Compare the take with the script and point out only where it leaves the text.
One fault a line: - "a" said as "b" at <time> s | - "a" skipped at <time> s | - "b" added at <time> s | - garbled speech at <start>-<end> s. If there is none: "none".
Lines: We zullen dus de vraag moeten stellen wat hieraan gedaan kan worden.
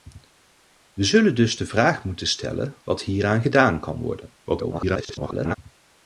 - garbled speech at 4.4-5.6 s